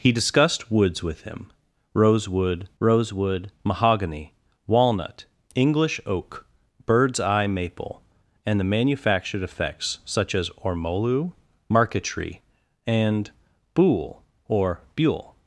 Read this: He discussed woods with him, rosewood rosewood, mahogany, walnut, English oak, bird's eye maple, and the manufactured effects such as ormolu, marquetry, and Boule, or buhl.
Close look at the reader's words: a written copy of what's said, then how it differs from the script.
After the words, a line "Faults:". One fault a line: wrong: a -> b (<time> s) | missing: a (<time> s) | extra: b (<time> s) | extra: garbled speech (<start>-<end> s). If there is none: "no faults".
He discussed woods with him, rosewood rosewood, mahogany, walnut, English oak, bird's eye maple, and the manufactured effects such as ormolu, marquetry, and Boule, or buhl.
Faults:
no faults